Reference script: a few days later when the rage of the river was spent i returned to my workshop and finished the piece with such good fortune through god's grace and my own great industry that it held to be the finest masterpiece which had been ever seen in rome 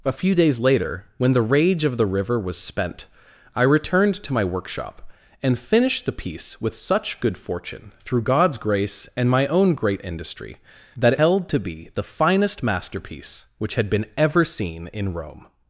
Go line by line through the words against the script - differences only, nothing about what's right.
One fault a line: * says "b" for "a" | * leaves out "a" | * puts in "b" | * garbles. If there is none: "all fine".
all fine